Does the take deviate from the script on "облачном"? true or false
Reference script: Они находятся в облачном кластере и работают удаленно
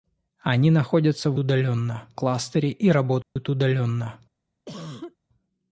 true